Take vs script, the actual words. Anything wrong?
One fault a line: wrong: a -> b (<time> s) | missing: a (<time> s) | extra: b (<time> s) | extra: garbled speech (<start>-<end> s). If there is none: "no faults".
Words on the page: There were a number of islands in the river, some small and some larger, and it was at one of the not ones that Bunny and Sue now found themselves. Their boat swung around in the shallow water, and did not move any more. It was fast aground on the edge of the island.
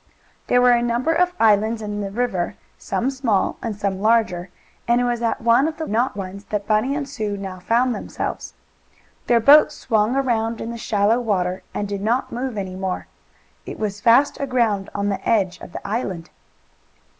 no faults